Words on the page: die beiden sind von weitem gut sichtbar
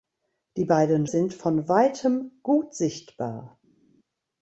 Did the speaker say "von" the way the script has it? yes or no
yes